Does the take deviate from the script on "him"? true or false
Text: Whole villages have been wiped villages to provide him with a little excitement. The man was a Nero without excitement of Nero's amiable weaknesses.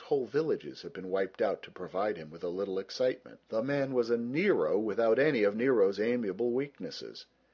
false